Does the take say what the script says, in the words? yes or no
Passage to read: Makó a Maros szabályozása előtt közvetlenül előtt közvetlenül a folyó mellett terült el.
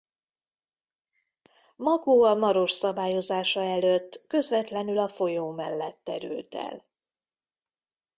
no